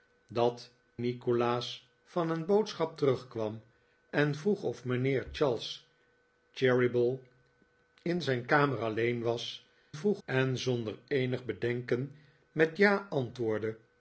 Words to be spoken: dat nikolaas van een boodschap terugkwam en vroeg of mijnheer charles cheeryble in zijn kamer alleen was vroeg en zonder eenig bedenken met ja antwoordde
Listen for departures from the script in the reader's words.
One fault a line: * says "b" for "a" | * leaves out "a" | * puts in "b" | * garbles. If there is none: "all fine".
all fine